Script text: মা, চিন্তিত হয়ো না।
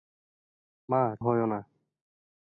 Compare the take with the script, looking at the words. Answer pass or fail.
fail